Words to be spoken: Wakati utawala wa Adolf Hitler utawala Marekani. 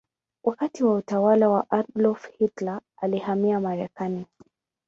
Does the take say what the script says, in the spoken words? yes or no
no